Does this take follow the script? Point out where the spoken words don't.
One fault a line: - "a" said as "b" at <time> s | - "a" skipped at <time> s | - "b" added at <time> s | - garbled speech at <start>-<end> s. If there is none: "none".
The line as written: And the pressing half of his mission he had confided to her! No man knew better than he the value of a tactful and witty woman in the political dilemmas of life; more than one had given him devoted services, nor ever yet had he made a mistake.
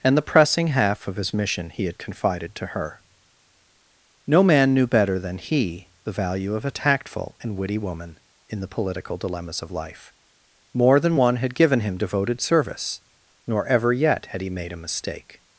- "services" said as "service" at 12.4 s